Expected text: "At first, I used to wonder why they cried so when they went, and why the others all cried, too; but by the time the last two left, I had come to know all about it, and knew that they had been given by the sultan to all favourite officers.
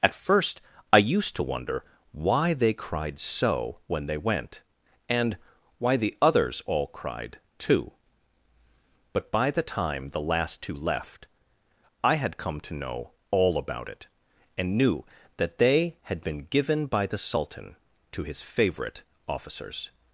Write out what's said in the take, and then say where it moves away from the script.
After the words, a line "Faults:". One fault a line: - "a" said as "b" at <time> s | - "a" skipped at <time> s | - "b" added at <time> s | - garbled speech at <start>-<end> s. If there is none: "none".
"At first, I used to wonder why they cried so when they went, and why the others all cried, too; but by the time the last two left, I had come to know all about it, and knew that they had been given by the sultan to his favourite officers.
Faults:
- "all" said as "his" at 18.2 s